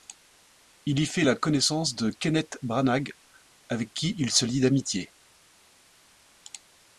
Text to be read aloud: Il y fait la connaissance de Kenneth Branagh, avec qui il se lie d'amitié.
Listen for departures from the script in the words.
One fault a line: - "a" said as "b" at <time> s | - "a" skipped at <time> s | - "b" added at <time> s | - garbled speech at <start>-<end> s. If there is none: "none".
none